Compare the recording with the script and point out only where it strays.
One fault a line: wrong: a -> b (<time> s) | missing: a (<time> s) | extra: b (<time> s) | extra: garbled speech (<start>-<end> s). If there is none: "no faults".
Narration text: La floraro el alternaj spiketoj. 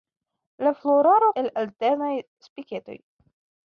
no faults